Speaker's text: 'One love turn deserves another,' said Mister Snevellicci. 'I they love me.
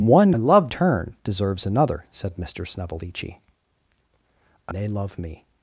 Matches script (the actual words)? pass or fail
pass